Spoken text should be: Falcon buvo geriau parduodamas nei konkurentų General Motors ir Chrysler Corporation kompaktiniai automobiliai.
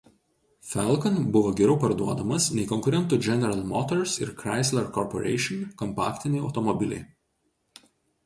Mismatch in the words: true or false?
false